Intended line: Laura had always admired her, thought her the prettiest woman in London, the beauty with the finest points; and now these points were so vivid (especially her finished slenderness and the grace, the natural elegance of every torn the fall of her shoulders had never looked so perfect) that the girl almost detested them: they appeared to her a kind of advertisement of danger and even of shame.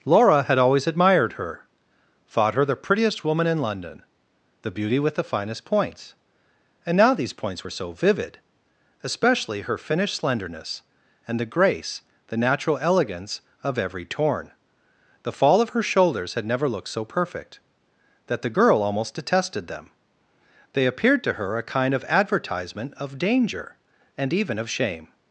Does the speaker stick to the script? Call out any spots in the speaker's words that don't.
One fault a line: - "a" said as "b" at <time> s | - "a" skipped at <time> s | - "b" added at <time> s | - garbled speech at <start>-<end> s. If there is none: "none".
none